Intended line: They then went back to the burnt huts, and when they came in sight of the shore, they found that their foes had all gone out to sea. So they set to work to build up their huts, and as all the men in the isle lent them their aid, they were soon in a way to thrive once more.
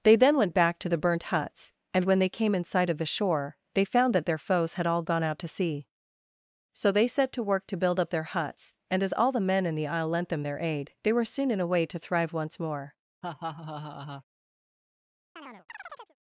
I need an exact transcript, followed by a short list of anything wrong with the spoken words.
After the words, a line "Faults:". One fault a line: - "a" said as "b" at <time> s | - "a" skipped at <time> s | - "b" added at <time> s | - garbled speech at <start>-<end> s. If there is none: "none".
They then went back to the burnt huts, and when they came in sight of the shore, they found that their foes had all gone out to sea. So they set to work to build up their huts, and as all the men in the isle lent them their aid, they were soon in a way to thrive once more.
Faults:
none